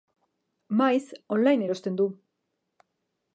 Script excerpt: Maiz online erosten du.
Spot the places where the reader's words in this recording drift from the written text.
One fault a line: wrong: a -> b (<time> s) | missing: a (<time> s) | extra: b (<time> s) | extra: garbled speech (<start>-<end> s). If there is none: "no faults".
no faults